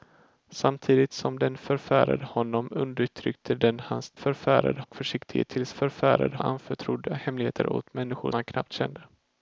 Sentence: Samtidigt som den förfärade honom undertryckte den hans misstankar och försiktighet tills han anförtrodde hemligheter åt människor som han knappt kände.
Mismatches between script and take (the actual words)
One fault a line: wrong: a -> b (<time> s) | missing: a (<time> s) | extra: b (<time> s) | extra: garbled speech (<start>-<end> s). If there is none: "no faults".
wrong: misstankar -> förfärade (4.1 s)
wrong: han -> förfärade (5.7 s)
missing: som (8.3 s)